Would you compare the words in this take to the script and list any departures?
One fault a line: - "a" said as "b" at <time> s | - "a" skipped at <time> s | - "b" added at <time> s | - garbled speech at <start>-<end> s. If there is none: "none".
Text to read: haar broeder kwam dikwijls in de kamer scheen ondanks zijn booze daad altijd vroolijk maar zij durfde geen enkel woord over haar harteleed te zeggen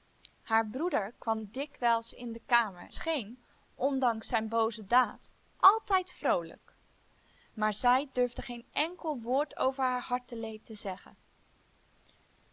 none